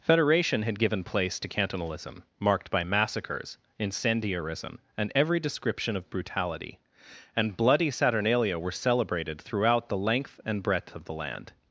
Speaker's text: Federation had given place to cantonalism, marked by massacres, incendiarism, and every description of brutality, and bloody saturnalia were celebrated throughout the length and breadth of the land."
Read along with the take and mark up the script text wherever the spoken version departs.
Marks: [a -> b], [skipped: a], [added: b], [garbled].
Federation had given place to cantonalism, marked by massacres, incendiarism, and every description of brutality, and bloody saturnalia were celebrated throughout the length and breadth of the land."